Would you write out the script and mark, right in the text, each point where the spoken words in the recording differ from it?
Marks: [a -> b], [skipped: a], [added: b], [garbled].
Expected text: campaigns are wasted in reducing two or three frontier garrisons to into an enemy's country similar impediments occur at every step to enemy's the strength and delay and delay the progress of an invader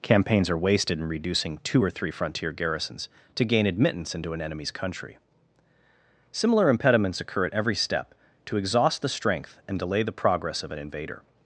campaigns are wasted in reducing two or three frontier garrisons to [added: gain admittance] into an enemy's country similar impediments occur at every step to [enemy's -> exhaust] the strength and delay [skipped: and delay] the progress of an invader